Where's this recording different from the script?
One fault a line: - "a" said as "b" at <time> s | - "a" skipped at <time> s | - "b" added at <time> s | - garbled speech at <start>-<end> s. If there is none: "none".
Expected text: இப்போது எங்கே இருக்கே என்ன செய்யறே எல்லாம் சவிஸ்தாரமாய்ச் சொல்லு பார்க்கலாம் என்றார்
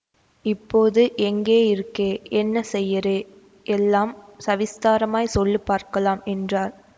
none